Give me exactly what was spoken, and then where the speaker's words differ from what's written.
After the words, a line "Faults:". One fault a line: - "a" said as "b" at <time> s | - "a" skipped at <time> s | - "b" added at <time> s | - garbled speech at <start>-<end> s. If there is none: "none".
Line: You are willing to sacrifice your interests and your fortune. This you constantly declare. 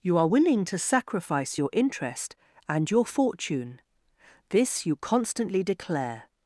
You are willing to sacrifice your interest and your fortune. This you constantly declare.
Faults:
- "interests" said as "interest" at 1.7 s